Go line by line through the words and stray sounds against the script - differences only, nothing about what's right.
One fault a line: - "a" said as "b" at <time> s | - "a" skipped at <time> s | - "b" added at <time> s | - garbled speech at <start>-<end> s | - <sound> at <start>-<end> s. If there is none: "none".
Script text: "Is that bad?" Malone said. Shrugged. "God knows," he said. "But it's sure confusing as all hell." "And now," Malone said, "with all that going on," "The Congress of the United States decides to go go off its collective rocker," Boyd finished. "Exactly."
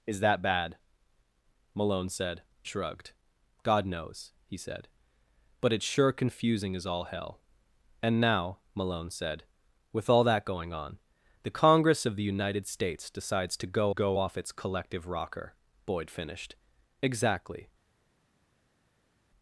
none